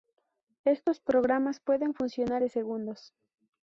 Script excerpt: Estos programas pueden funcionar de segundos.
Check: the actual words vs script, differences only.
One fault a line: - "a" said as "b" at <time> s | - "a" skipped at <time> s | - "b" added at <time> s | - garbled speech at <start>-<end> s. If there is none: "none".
none